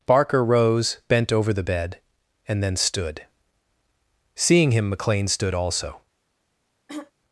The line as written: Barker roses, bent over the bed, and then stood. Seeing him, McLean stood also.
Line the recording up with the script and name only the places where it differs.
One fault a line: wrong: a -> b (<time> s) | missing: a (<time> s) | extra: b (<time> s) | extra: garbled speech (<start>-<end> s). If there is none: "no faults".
wrong: roses -> rose (0.4 s)